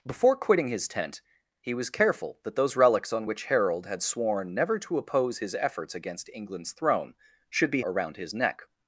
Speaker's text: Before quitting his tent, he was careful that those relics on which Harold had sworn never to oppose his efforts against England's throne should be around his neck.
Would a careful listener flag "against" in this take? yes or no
no